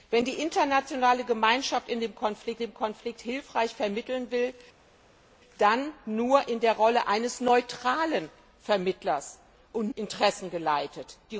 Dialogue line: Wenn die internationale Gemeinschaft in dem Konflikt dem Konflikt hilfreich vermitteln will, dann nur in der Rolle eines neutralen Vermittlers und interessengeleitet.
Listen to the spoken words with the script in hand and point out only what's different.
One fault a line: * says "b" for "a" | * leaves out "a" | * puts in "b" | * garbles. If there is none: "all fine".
all fine